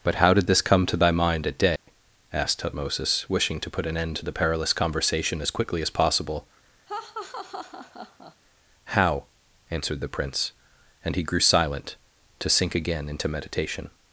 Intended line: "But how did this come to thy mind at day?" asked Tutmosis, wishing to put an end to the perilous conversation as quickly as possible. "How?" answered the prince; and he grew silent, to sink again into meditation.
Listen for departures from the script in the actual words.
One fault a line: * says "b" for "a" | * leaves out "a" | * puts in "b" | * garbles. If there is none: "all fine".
all fine